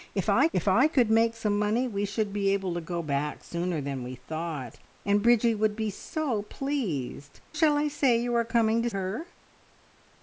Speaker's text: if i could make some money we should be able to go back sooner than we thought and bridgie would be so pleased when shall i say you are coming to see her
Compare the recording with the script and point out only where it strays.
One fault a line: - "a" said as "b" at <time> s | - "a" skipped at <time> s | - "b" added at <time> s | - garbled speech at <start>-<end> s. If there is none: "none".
- "if i" added at 0.5 s
- "when" skipped at 7.4 s
- "see" skipped at 8.9 s